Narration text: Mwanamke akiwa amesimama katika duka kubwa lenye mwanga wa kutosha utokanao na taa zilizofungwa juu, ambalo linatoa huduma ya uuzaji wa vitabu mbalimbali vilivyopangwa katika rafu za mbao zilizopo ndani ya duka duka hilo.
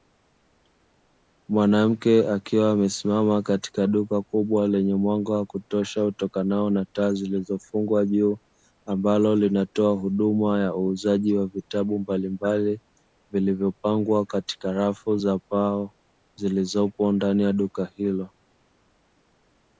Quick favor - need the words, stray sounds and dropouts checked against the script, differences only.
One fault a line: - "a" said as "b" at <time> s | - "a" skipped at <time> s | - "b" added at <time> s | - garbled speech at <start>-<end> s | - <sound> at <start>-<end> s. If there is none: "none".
- "duka" skipped at 17.8 s